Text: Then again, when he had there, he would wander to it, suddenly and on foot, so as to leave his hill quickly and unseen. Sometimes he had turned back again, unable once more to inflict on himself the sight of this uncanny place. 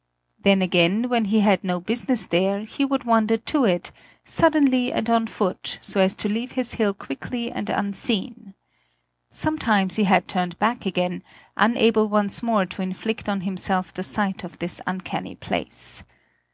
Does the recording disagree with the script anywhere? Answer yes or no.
yes